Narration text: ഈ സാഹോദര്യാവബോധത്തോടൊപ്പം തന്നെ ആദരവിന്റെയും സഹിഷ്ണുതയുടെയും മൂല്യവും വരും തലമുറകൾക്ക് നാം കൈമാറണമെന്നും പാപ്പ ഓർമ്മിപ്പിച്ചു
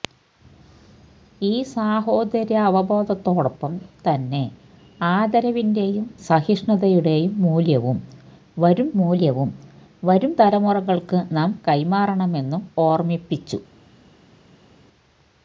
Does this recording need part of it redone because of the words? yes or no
yes